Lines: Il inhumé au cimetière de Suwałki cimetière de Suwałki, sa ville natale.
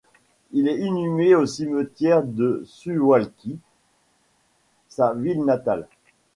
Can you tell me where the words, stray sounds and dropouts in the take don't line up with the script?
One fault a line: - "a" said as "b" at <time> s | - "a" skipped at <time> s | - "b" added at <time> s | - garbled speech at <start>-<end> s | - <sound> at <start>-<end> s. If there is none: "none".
- "est" added at 0.7 s
- "cimetière de Suwałki" skipped at 3.6 s